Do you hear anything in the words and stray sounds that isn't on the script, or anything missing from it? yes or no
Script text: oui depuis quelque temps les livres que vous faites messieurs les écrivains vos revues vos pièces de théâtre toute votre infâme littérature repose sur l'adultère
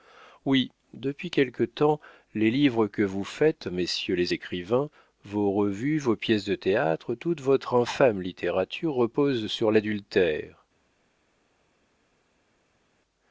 no